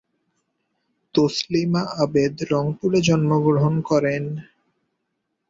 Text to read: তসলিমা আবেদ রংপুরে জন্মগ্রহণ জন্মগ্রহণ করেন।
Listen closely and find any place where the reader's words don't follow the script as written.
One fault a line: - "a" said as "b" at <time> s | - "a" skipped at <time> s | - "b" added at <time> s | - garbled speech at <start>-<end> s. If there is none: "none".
- "জন্মগ্রহণ" skipped at 3.7 s